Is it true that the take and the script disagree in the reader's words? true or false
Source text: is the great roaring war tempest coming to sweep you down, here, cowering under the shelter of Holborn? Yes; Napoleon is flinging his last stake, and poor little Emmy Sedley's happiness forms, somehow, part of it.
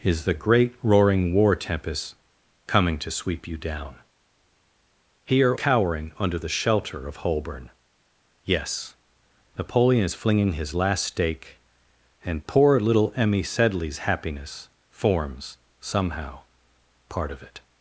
false